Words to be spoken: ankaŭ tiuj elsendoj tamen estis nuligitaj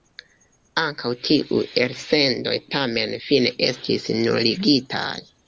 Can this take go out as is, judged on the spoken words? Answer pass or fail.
fail